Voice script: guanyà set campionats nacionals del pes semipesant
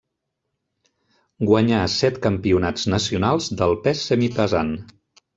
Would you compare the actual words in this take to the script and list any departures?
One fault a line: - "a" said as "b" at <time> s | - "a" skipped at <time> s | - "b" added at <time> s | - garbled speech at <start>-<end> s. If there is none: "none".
none